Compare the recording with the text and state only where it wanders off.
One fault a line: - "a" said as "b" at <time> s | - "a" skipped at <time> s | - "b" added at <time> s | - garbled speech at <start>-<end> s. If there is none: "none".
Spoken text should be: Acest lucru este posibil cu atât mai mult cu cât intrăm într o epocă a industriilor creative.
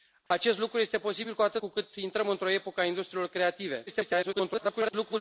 - "mai mult" skipped at 1.6 s
- garbled speech at 3.9-5.2 s